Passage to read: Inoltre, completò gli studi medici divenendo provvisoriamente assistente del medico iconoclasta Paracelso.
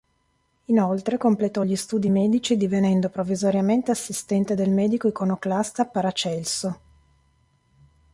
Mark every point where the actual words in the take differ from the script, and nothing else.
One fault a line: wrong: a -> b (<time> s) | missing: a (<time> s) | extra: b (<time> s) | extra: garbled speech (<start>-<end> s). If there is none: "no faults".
no faults